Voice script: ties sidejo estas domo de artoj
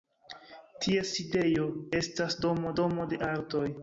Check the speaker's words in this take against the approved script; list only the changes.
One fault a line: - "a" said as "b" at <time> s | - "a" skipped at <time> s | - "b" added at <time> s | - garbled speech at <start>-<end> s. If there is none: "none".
- "domo" added at 2.8 s